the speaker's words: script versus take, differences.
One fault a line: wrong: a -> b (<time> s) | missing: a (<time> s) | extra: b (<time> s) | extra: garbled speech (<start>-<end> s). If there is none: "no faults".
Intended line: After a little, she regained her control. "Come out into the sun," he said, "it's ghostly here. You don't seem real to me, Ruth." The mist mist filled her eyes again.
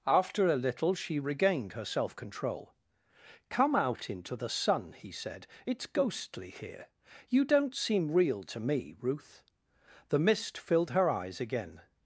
extra: self (1.9 s)
missing: mist (10.6 s)